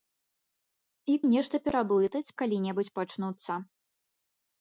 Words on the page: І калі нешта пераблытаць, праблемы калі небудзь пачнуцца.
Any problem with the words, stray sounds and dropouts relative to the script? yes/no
yes